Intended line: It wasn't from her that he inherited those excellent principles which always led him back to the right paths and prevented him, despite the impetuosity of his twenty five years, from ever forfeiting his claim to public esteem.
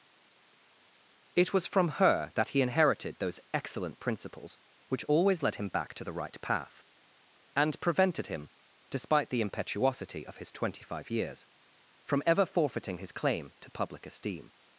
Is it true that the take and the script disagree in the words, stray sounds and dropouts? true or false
true